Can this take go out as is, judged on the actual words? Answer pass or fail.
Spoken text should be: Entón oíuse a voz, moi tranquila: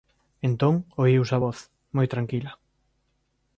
pass